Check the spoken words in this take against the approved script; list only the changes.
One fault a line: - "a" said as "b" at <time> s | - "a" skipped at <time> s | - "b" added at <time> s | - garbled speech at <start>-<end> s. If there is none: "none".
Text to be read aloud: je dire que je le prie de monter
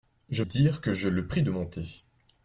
none